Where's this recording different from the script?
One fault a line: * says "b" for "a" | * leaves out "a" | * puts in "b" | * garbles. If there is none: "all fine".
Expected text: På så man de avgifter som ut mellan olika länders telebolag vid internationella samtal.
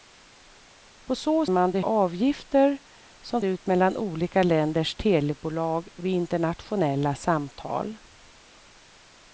all fine